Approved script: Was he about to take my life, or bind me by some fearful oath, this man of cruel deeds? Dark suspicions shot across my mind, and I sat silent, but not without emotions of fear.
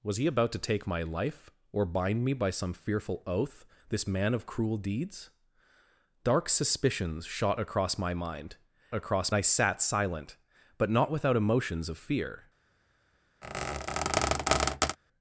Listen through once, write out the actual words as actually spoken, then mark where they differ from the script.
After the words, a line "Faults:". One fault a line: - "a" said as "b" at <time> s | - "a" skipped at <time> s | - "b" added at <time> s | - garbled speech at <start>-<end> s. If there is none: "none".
Was he about to take my life, or bind me by some fearful oath, this man of cruel deeds? Dark suspicions shot across my mind, across I sat silent, but not without emotions of fear.
Faults:
- "and" said as "across" at 8.9 s